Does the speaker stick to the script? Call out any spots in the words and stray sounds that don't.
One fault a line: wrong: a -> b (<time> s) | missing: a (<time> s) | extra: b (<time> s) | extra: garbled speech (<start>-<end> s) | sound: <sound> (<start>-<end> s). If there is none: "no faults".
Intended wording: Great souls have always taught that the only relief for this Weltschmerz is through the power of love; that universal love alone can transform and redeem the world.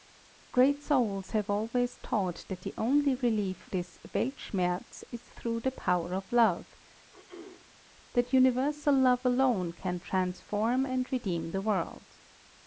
missing: for (3.7 s)
sound: throat clearing (7.1-7.7 s)